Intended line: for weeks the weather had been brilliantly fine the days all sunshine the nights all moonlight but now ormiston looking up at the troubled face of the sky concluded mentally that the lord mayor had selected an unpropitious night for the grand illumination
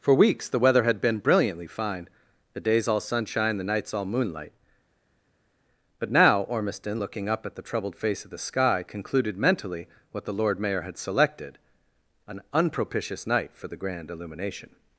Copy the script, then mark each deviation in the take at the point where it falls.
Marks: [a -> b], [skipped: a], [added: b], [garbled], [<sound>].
for weeks the weather had been brilliantly fine the days all sunshine the nights all moonlight but now ormiston looking up at the troubled face of the sky concluded mentally [that -> what] the lord mayor had selected an unpropitious night for the grand illumination